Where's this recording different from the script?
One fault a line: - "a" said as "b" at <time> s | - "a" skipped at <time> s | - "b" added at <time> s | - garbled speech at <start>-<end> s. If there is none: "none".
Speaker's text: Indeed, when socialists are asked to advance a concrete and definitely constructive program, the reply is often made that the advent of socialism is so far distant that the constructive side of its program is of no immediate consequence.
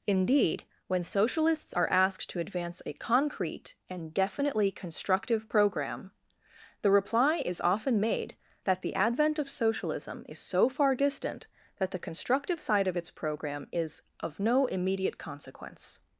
none